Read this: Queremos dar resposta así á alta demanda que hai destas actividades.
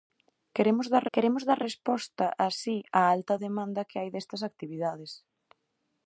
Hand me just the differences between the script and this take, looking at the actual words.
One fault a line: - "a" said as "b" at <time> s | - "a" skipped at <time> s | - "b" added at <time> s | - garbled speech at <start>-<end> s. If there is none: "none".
- "queremos dar" added at 1.1 s